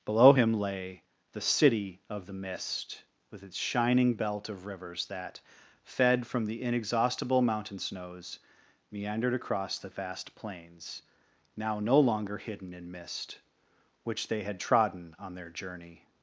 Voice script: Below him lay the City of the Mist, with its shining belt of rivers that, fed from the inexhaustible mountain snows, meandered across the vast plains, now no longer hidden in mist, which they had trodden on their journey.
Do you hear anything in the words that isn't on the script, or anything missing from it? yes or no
no